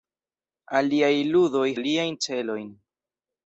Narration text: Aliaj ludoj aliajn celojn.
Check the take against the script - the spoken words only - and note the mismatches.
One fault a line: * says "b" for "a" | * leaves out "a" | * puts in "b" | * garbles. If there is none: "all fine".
all fine